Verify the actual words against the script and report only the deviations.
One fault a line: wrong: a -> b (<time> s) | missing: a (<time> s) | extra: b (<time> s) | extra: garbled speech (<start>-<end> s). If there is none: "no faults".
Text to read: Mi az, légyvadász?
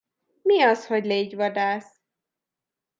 extra: hogy (0.9 s)